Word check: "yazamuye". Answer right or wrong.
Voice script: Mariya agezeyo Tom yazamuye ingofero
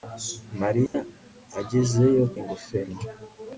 wrong